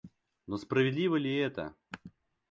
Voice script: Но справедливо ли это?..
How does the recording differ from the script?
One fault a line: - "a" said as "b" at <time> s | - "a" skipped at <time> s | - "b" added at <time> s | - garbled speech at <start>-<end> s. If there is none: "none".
none